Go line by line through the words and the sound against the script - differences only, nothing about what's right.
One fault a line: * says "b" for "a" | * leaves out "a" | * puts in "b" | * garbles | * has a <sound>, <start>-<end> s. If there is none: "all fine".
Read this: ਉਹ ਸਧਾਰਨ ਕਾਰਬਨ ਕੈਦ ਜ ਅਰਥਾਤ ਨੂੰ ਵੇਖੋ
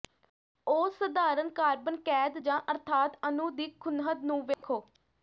* puts in "ਅਣੂ ਦੀ ਖੂੰਹਦ"
* has a dropout, 4.5-4.6 s